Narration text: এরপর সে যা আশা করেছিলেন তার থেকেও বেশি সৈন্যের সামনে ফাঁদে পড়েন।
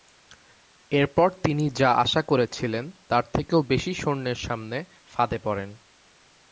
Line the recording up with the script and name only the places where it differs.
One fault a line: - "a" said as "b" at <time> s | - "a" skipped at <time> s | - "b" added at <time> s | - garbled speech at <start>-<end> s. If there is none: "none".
- "সে" said as "তিনি" at 1.4 s